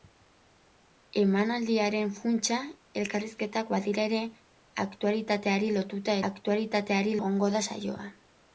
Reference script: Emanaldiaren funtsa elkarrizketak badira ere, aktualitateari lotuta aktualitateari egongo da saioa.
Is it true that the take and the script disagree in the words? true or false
false